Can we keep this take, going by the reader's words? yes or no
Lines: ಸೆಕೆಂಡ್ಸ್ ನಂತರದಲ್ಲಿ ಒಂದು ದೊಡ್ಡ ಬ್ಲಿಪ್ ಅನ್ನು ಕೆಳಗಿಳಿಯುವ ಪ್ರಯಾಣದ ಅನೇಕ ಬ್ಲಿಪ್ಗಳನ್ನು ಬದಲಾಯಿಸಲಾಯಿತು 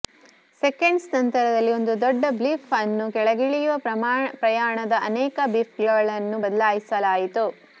yes